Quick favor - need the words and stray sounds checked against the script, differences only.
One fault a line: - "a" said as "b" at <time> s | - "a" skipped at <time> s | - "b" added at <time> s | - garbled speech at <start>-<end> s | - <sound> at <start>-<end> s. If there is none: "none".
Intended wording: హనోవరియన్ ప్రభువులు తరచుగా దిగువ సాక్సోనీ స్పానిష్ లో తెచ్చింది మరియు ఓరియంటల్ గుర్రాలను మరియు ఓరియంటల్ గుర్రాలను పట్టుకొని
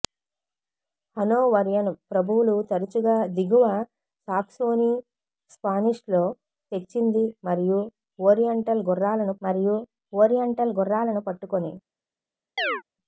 - chirp at 12.6-12.8 s